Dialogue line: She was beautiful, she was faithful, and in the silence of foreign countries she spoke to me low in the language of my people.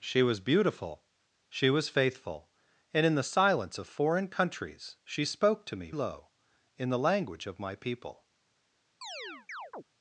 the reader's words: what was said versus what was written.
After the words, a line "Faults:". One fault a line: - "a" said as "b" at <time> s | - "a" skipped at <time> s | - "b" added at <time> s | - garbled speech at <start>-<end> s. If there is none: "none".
She was beautiful, she was faithful, and in the silence of foreign countries she spoke to me low in the language of my people.
Faults:
none